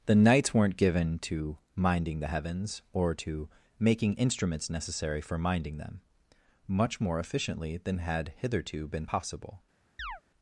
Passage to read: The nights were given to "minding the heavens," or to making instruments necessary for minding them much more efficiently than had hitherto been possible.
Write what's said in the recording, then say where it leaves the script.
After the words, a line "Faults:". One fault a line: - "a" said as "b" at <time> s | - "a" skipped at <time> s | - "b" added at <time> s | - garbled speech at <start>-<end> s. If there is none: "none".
The nights weren't given to "minding the heavens," or to making instruments necessary for minding them much more efficiently than had hitherto been possible.
Faults:
- "were" said as "weren't" at 0.5 s